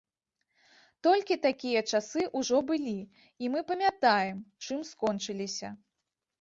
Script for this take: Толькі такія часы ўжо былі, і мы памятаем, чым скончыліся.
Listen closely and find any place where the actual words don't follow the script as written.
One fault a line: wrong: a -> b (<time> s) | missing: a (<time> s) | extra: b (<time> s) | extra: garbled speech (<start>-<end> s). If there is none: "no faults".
no faults